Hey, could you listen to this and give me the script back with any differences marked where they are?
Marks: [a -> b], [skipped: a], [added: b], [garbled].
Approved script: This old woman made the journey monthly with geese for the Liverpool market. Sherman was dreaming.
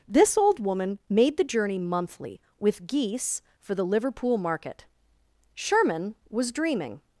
This old woman made the journey monthly with geese for the Liverpool market. Sherman was dreaming.